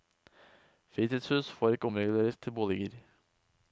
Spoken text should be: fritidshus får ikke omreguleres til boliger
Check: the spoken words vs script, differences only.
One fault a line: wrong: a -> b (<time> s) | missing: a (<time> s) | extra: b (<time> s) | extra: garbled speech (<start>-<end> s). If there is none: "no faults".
no faults